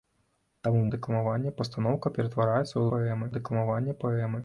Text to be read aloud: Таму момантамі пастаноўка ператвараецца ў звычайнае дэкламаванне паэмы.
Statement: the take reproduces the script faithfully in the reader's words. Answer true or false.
false